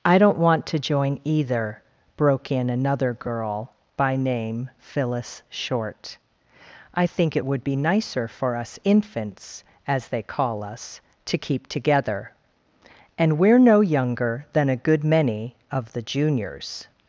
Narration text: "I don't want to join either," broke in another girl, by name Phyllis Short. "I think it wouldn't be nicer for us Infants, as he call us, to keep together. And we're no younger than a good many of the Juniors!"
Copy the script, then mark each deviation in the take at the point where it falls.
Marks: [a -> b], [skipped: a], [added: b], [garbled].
"I don't want to join either," broke in another girl, by name Phyllis Short. "I think it [wouldn't -> would] be nicer for us Infants, as [he -> they] call us, to keep together. And we're no younger than a good many of the Juniors!"